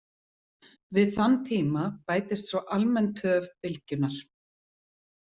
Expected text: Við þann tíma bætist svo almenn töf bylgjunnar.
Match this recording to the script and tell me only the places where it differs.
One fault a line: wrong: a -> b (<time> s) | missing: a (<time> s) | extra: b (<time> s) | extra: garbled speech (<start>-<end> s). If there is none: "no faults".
no faults